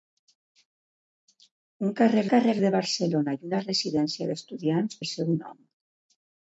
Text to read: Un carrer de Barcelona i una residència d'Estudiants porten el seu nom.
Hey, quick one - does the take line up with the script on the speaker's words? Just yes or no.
no